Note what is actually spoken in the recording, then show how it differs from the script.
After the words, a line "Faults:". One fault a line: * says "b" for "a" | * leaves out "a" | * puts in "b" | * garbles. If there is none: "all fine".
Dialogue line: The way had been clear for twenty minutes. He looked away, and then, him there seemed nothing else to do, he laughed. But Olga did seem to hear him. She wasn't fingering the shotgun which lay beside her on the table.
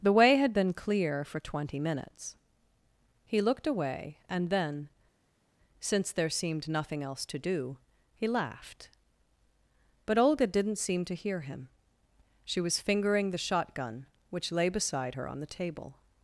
The way had been clear for twenty minutes. He looked away, and then, since there seemed nothing else to do, he laughed. But Olga didn't seem to hear him. She was fingering the shotgun which lay beside her on the table.
Faults:
* says "since" for "him"
* says "didn't" for "did"
* says "was" for "wasn't"